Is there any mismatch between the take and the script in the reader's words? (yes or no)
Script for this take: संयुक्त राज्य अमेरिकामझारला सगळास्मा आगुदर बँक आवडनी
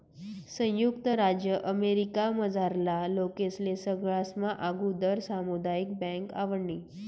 yes